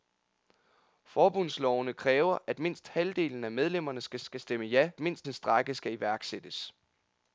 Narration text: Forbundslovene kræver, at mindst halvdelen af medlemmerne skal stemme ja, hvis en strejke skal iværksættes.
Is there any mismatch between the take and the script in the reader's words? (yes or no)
yes